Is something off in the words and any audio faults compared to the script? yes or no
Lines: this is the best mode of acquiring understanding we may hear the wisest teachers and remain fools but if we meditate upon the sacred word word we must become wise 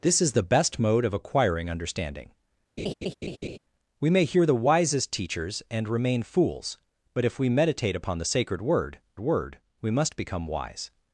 yes